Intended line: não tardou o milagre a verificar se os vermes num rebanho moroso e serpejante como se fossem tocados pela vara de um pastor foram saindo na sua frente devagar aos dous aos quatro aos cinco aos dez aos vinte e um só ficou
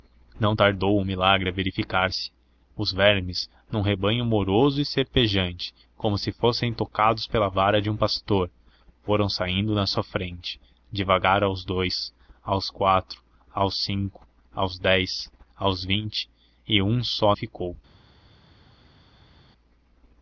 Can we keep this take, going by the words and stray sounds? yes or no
yes